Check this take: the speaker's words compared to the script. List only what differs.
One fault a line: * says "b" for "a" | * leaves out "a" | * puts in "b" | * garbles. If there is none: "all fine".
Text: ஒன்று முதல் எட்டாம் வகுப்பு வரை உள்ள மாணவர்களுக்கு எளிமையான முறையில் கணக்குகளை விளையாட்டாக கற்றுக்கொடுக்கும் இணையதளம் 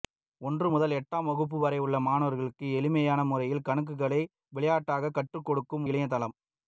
all fine